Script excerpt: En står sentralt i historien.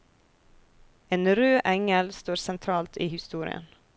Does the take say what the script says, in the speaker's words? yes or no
no